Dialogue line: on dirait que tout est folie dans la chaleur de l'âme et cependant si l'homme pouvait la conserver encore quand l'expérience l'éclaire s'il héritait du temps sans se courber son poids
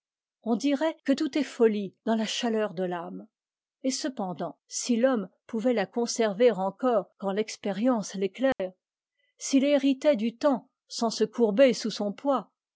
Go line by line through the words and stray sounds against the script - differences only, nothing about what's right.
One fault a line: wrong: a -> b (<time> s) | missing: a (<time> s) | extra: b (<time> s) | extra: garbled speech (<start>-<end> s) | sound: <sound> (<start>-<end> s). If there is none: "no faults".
sound: dropout (8.5-8.6 s)
extra: sous (11.7 s)